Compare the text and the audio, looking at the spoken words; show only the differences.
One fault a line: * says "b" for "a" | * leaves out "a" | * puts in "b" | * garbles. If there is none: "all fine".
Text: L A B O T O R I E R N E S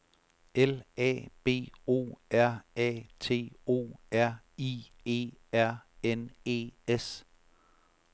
* puts in "R A"